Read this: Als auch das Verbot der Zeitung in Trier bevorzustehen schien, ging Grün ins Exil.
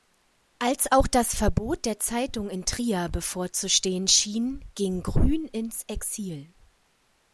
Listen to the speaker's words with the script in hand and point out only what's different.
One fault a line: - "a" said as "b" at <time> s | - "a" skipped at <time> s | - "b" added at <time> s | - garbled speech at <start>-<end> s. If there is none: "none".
none